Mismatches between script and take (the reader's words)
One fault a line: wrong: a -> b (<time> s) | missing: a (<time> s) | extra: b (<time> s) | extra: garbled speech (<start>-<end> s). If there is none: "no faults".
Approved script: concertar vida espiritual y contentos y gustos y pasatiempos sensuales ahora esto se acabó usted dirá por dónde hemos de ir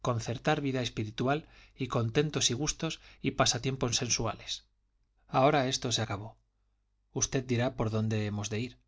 no faults